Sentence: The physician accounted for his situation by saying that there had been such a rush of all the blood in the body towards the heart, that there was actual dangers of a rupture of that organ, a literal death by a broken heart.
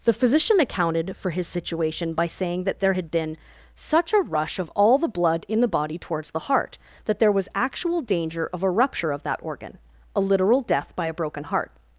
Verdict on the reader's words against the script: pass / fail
fail